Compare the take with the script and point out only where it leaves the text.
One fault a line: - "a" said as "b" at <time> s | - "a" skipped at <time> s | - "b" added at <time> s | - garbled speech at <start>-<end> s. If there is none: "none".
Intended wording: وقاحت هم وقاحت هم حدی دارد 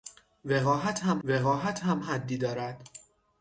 none